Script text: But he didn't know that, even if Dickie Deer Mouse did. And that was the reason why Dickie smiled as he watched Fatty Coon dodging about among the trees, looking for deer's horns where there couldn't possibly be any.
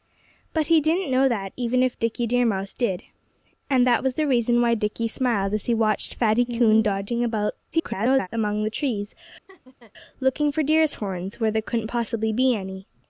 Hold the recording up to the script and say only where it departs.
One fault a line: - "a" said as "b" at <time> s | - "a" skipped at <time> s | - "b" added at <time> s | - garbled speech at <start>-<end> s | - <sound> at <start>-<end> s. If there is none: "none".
- garbled speech at 7.7-8.3 s
- laugh at 9.5-9.9 s